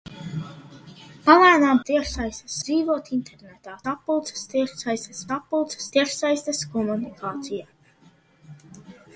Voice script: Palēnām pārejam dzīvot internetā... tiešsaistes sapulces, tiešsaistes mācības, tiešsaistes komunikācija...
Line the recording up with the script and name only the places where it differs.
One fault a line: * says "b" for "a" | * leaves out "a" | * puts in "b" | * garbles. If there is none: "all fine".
* says "tiešsaistes" for "pārejam"
* leaves out "tiešsaistes"
* says "sapulces" for "mācības"